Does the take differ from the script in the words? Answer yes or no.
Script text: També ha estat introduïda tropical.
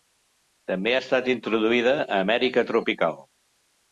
yes